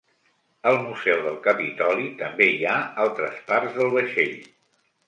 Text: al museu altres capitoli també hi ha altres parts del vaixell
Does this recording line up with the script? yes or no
no